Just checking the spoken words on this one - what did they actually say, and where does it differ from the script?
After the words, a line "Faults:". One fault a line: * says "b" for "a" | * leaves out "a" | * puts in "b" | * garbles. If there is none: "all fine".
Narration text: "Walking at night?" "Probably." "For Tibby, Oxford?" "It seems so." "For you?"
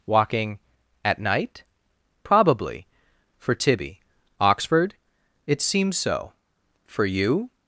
"Walking at night?" "Probably." "For Tibby, Oxford?" "It seems so." "For you?"
Faults:
all fine